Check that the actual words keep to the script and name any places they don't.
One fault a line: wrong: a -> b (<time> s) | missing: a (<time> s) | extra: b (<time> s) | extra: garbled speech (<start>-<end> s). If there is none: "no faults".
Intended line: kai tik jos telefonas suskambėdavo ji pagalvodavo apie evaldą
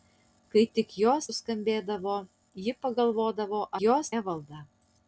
missing: telefonas (1.3 s)
wrong: apie -> jos (3.8 s)